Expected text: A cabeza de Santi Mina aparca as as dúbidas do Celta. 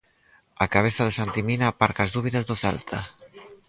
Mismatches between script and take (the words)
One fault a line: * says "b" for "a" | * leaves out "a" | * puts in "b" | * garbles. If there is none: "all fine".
* leaves out "as"